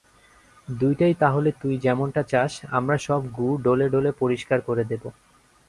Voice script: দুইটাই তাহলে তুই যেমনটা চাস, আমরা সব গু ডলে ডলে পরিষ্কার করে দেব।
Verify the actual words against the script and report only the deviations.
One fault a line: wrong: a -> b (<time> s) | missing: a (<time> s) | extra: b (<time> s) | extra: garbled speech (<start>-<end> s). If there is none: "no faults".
no faults